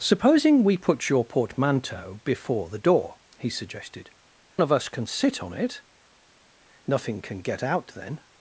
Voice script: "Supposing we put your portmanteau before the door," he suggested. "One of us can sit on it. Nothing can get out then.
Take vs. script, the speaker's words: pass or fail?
fail